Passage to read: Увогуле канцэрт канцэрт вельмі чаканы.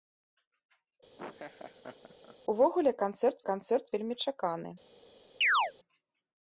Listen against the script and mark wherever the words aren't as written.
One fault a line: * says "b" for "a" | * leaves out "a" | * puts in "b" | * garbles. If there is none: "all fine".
all fine